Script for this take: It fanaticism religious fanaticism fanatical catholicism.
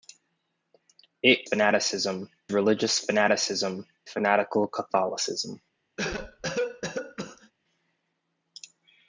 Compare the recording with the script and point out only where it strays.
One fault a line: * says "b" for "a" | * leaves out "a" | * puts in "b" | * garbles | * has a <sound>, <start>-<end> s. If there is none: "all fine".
* has a cough, 6.0-7.5 s